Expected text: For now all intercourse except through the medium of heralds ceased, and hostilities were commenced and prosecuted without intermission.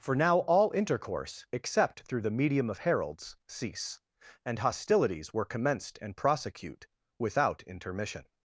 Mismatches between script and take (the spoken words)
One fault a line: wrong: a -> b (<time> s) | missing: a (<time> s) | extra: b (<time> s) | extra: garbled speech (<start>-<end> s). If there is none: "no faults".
wrong: ceased -> cease (3.5 s)
wrong: prosecuted -> prosecute (6.2 s)